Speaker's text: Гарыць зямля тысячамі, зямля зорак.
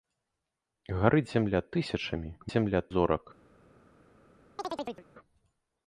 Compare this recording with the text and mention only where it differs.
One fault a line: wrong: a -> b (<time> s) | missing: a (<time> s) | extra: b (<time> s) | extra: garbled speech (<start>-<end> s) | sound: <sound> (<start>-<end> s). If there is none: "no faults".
sound: chirp (4.6-5.1 s)